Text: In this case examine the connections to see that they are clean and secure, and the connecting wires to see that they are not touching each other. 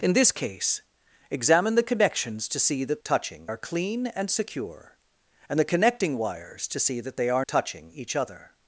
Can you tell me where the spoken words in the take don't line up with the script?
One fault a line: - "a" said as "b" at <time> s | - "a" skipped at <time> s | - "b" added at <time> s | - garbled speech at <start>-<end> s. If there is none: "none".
- "they" said as "touching" at 3.0 s
- "not" skipped at 7.4 s